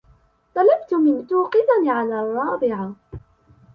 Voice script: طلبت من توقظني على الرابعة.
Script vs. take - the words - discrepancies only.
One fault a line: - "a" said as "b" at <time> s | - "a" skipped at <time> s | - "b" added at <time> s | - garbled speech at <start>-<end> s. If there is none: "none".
none